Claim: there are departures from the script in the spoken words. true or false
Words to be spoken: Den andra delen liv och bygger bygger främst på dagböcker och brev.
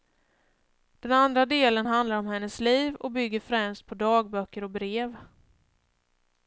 true